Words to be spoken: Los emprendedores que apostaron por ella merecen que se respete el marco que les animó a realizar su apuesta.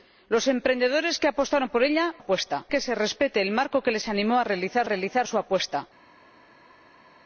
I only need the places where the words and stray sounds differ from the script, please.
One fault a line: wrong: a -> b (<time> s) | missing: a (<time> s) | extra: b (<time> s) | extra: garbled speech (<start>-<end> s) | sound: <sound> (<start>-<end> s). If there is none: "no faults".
wrong: merecen -> apuesta (2.2 s)
extra: realizar (4.8 s)